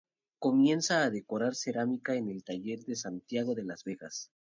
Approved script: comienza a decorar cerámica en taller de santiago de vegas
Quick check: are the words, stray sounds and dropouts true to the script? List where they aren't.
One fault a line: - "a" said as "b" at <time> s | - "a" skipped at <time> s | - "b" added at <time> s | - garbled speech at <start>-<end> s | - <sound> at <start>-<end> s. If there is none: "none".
- "el" added at 2.3 s
- "las" added at 3.6 s